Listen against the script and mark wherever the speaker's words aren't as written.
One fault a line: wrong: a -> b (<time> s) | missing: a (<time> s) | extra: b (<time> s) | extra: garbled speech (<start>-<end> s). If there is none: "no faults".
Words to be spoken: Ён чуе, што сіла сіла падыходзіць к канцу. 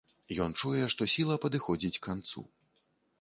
missing: сіла (1.4 s)